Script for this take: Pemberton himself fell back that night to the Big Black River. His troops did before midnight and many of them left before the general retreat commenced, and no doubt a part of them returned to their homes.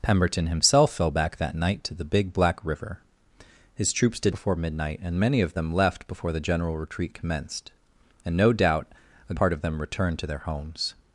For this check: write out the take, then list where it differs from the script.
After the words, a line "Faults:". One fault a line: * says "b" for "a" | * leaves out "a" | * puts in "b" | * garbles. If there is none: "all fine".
Pemberton himself fell back that night to the Big Black River. His troops did before midnight and many of them left before the general retreat commenced, and no doubt a part of them returned to their homes.
Faults:
all fine